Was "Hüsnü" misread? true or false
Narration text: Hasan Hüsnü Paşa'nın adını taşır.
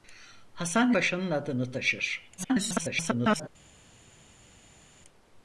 true